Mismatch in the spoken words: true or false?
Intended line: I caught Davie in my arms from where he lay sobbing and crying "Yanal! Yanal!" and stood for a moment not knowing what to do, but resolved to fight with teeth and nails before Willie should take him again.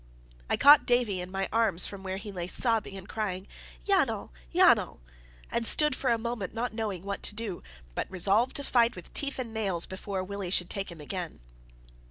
false